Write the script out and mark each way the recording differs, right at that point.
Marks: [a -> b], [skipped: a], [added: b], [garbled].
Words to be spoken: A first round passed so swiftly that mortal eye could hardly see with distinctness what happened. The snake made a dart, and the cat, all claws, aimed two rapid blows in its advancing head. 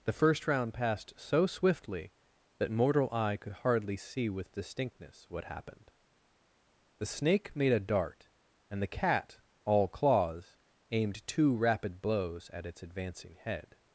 [A -> The] first round passed so swiftly that mortal eye could hardly see with distinctness what happened. The snake made a dart, and the cat, all claws, aimed two rapid blows [in -> at] its advancing head.